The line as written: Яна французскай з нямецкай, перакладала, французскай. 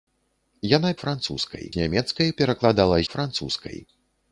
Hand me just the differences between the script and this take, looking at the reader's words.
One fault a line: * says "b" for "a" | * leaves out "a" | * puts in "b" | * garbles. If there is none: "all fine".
all fine